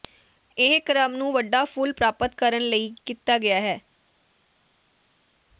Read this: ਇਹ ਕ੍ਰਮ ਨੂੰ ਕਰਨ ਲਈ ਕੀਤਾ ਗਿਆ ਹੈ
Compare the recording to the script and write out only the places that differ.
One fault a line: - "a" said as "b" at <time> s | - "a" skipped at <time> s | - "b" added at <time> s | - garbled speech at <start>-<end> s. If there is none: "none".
- "ਵੱਡਾ ਫੁੱਲ ਪ੍ਰਾਪਤ" added at 1.3 s